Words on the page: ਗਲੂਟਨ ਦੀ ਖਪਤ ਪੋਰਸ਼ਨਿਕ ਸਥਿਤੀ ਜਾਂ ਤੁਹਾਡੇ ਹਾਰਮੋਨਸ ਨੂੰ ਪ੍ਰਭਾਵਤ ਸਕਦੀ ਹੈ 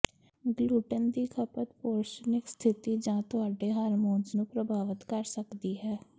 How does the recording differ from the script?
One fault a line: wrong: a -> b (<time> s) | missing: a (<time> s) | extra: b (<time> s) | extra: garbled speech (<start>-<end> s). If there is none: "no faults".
extra: ਕਰ (5.1 s)